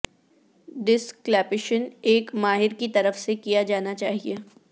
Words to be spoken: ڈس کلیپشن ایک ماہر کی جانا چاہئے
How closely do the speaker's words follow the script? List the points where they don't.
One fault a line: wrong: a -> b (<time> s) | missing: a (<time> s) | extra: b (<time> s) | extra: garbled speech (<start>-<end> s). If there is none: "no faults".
extra: طرف سے کیا (2.9 s)